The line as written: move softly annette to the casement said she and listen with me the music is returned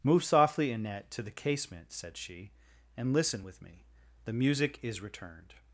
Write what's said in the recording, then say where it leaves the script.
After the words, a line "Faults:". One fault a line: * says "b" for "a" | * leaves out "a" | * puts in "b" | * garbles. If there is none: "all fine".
move softly annette to the casement said she and listen with me the music is returned
Faults:
all fine